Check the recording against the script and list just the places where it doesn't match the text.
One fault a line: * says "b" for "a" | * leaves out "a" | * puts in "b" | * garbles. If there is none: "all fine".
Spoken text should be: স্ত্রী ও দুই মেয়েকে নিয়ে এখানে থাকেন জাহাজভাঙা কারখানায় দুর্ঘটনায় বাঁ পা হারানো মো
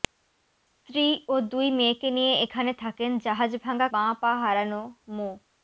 * leaves out "কারখানায় দুর্ঘটনায়"